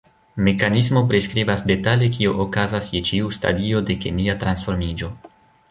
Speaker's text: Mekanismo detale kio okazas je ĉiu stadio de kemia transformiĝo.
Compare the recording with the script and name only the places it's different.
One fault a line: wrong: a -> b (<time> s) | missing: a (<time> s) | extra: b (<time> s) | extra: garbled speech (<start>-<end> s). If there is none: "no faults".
extra: priskribas (1.1 s)